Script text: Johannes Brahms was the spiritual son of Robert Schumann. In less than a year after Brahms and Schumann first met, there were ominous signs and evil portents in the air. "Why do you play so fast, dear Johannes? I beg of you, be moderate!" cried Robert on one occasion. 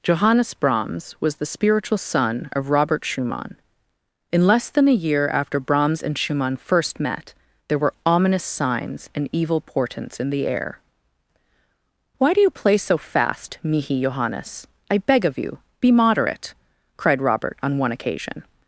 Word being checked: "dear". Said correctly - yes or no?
no